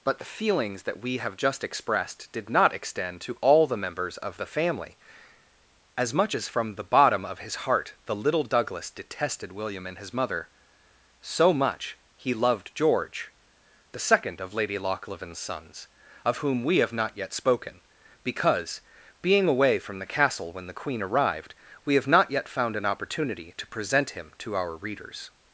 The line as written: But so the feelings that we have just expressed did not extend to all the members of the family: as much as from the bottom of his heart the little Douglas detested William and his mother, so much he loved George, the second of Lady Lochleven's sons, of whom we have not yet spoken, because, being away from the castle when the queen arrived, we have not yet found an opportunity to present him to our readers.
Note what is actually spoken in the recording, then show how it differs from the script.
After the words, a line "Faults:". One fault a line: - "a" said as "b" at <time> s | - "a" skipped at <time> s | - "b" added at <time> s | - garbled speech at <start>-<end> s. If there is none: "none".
But the feelings that we have just expressed did not extend to all the members of the family: as much as from the bottom of his heart the little Douglas detested William and his mother, so much he loved George, the second of Lady Lochleven's sons, of whom we have not yet spoken, because, being away from the castle when the queen arrived, we have not yet found an opportunity to present him to our readers.
Faults:
- "so" skipped at 0.2 s